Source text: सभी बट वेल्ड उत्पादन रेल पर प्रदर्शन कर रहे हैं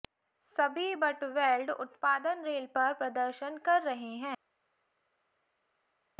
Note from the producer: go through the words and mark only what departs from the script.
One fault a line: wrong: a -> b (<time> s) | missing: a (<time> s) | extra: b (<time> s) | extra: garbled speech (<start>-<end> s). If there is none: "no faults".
no faults